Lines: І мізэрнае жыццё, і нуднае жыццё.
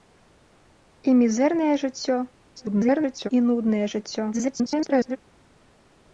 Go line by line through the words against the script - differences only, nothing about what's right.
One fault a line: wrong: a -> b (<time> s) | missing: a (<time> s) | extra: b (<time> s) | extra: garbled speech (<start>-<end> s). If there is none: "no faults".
extra: garbled speech (2.6-3.3 s)
extra: garbled speech (4.3-5.2 s)